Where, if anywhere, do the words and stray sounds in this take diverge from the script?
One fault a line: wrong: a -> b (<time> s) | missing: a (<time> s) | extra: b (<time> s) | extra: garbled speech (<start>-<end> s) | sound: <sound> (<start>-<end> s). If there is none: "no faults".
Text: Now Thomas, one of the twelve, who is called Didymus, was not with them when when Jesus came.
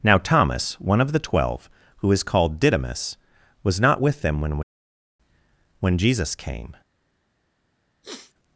sound: sniff (8.0-8.3 s)